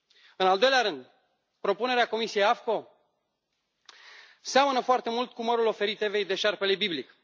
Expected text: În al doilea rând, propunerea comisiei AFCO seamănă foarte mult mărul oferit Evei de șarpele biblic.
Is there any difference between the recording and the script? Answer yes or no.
yes